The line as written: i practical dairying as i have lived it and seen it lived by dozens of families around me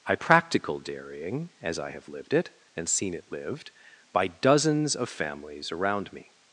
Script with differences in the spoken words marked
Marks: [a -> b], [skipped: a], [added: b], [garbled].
i practical dairying as i have lived it and seen it lived by dozens of families around me